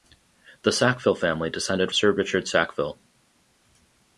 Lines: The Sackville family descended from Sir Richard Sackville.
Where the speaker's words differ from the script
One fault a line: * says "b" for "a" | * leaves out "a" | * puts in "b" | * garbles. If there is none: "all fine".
* leaves out "from"